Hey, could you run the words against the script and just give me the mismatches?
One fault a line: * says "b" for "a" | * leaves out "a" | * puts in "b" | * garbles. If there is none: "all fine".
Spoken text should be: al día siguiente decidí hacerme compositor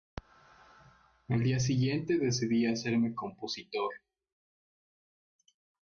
all fine